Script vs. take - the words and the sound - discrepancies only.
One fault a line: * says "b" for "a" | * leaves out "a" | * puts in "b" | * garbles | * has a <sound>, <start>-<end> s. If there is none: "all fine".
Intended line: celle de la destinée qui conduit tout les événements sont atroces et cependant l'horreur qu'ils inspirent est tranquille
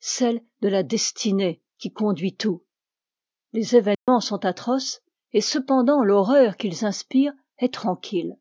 * has a dropout, 3.9-4.1 s